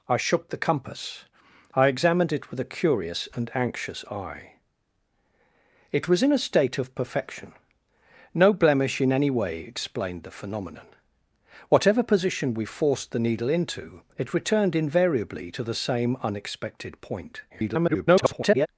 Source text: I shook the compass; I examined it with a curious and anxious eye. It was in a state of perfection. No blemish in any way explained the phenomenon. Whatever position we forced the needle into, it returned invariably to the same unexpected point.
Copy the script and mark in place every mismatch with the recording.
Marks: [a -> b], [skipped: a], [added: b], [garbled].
I shook the compass; I examined it with a curious and anxious eye. It was in a state of perfection. No blemish in any way explained the phenomenon. Whatever position we forced the needle into, it returned invariably to the same unexpected point. [garbled]